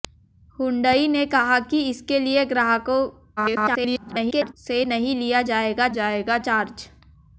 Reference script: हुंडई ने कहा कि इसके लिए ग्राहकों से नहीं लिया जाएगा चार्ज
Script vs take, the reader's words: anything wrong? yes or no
yes